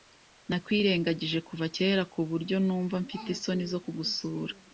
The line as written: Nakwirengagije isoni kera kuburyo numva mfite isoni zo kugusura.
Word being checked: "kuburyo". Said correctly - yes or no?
yes